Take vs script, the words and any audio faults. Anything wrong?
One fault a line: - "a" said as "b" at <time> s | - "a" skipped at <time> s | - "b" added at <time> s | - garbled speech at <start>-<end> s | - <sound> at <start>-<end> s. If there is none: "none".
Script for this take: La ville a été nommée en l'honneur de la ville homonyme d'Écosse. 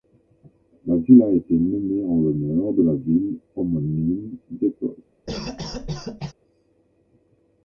- cough at 5.3-6.3 s